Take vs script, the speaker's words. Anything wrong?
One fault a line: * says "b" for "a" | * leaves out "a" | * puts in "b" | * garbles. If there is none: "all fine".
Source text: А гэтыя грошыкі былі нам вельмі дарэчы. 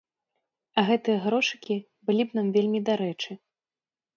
* puts in "б"